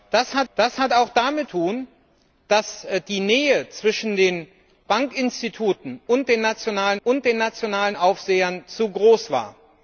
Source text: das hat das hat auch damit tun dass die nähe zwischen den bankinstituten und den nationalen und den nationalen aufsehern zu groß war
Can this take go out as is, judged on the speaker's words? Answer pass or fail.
pass